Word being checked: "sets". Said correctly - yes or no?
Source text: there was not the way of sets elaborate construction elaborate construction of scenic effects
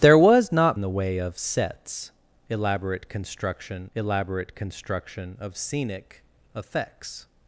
yes